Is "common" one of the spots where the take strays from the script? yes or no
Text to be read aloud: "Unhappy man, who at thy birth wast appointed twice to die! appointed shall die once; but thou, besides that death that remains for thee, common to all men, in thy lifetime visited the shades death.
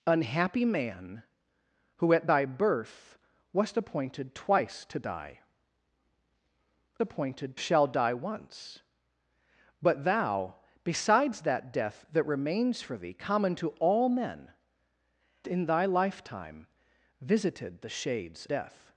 no